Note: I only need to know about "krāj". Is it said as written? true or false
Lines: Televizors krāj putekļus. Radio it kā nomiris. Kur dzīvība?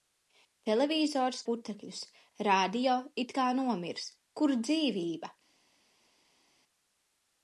false